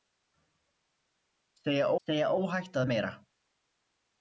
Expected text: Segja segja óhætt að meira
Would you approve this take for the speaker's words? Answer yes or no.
yes